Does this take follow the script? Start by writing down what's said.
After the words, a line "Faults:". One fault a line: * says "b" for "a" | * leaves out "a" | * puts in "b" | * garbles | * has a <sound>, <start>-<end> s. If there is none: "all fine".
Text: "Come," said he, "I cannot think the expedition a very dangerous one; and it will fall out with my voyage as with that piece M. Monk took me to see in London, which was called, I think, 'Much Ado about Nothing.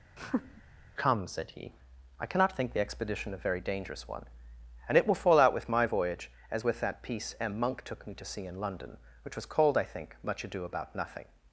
"Come," said he, "I cannot think the expedition a very dangerous one; and it will fall out with my voyage as with that piece M. Monk took me to see in London, which was called, I think, 'Much Ado about Nothing.
Faults:
* has a laugh, 0.2-0.6 s